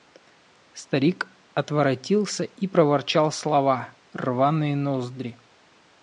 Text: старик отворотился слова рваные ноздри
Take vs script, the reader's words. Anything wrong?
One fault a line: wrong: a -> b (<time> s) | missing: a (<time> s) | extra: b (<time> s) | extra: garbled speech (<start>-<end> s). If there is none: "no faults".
extra: и проворчал (2.4 s)